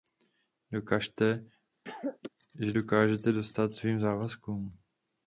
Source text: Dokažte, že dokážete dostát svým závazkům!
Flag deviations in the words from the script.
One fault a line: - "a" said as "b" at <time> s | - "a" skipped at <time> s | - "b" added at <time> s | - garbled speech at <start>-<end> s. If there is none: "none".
none